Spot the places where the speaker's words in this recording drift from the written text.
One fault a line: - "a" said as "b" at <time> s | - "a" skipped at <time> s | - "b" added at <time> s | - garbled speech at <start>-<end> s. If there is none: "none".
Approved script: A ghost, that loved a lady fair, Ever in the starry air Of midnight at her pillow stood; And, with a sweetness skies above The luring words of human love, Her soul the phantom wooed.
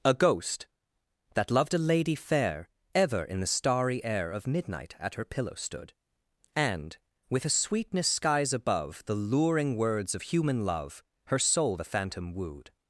none